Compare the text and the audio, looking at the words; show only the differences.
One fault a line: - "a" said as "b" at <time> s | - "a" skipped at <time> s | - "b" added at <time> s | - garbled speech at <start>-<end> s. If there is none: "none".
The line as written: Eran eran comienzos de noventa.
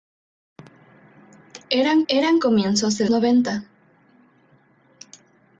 none